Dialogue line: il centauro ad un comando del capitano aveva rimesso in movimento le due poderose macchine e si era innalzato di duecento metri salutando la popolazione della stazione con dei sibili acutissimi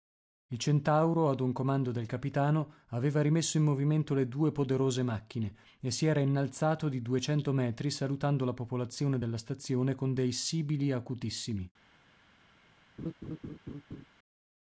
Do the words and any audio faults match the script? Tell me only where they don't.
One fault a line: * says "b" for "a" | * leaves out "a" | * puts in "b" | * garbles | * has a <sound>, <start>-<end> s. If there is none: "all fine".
* has a laugh, 13.0-14.1 s